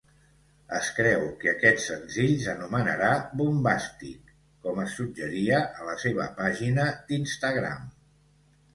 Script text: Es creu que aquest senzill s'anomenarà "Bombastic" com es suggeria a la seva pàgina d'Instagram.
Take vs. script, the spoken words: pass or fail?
pass